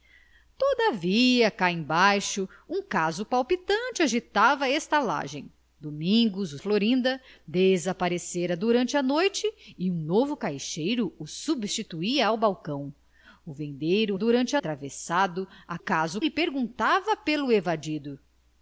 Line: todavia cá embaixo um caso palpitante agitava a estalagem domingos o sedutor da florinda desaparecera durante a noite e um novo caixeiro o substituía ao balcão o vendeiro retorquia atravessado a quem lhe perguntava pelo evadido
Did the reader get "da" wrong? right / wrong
wrong